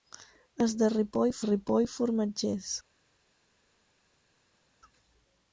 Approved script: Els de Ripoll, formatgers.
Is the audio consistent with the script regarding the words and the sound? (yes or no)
no